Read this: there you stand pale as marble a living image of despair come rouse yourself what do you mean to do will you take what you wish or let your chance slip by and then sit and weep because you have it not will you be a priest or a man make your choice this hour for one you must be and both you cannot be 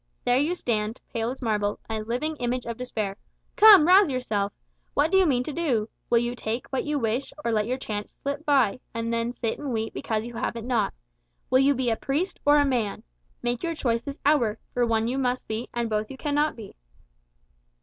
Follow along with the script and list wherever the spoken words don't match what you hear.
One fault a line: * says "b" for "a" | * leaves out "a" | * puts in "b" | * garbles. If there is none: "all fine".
all fine